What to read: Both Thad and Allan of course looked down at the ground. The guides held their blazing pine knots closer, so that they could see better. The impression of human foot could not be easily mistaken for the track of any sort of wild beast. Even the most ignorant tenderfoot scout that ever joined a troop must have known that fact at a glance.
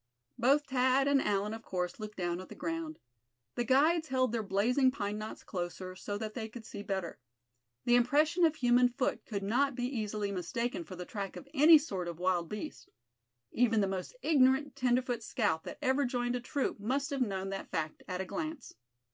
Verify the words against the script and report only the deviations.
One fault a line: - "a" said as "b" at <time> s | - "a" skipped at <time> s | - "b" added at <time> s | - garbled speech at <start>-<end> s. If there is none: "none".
none